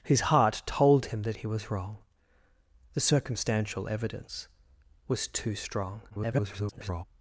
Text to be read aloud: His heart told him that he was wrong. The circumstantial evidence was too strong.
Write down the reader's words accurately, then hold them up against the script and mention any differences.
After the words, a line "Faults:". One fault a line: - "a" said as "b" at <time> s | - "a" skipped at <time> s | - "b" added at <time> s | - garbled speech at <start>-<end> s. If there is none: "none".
His heart told him that he was wrong. The circumstantial evidence was too strong. [garbled]
Faults:
- garbled speech at 6.1-7.0 s